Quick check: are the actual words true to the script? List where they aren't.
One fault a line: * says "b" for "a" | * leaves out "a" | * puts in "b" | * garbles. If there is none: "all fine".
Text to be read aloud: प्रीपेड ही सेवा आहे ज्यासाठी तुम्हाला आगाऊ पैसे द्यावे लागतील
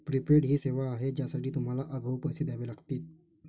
all fine